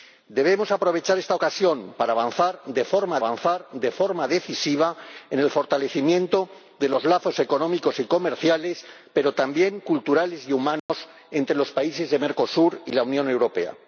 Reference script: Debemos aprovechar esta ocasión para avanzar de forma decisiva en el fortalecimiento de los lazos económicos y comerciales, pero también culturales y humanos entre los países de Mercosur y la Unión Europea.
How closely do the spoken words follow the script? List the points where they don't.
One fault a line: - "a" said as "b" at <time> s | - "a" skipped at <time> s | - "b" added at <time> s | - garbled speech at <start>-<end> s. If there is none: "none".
- "avanzar de forma" added at 3.2 s